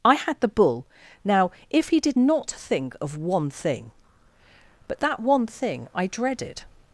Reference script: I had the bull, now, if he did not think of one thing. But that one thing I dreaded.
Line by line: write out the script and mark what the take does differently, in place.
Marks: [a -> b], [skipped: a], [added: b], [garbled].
I had the bull, now, if he did not think of one thing. But that one thing I dreaded.